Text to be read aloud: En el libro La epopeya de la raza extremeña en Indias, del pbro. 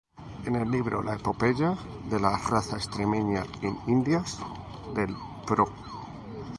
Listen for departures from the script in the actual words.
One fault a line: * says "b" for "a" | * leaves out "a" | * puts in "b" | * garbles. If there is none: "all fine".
all fine